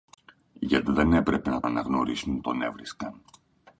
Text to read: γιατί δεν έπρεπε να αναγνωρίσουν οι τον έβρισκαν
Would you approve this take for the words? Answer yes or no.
yes